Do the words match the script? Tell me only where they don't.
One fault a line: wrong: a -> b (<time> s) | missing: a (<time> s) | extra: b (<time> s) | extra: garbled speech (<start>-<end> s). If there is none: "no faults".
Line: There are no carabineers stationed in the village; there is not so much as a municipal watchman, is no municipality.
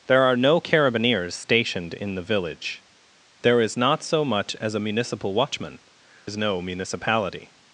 no faults